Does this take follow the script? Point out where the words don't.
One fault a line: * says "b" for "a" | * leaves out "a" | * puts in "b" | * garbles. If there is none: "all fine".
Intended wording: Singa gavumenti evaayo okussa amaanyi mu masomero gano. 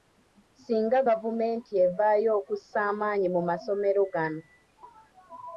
all fine